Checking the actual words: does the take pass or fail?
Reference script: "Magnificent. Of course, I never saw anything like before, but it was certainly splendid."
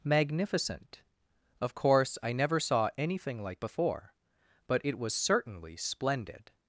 pass